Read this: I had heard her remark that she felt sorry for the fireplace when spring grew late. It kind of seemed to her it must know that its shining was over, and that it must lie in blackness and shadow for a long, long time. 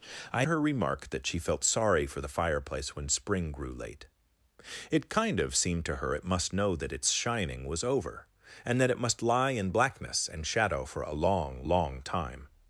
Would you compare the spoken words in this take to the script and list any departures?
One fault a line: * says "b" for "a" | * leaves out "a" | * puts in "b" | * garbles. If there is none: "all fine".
* leaves out "had heard"